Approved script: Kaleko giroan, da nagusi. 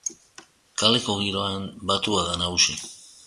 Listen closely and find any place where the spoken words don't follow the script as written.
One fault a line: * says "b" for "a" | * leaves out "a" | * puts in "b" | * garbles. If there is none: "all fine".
* puts in "batua"